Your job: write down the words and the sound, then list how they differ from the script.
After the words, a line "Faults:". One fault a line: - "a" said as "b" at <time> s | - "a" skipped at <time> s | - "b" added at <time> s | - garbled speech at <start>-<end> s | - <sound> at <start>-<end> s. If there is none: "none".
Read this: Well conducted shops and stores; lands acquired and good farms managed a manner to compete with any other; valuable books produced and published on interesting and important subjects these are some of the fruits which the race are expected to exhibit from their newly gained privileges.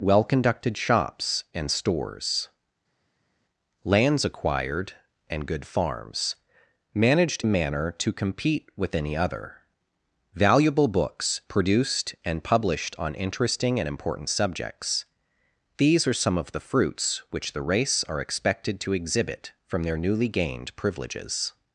Well conducted shops and stores; lands acquired and good farms managed a manner to compete with any other; valuable books produced and published on interesting and important subjects these are some of the fruits which the race are expected to exhibit from their newly gained privileges.
Faults:
none